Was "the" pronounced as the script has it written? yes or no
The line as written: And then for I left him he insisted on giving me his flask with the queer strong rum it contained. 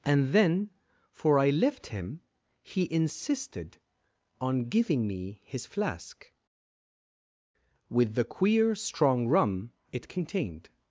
yes